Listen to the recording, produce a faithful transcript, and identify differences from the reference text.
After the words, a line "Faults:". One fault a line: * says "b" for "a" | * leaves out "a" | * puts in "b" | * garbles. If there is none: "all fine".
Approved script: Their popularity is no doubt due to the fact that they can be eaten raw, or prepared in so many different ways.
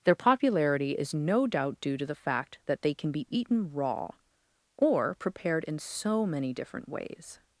Their popularity is no doubt due to the fact that they can be eaten raw, or prepared in so many different ways.
Faults:
all fine